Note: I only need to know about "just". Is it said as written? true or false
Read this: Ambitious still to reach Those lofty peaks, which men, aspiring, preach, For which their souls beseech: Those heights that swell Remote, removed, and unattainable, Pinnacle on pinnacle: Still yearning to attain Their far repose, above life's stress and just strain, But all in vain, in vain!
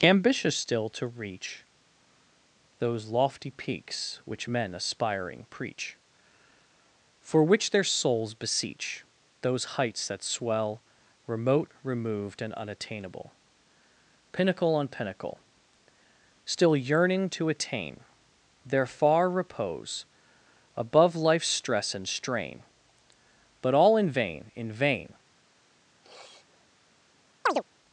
false